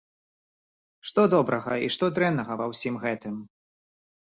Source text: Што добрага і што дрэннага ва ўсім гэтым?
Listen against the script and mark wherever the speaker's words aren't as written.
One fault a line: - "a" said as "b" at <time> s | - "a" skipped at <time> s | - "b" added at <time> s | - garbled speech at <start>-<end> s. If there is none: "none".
none